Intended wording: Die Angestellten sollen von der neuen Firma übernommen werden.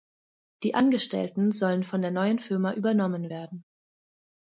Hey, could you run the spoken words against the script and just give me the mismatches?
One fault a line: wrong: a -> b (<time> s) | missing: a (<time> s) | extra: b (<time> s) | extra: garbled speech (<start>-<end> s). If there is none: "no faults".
no faults